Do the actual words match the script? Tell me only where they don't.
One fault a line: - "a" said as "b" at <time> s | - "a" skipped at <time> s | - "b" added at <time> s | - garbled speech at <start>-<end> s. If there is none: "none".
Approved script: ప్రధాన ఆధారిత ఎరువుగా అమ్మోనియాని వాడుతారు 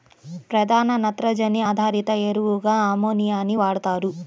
- "నత్రజని" added at 1.0 s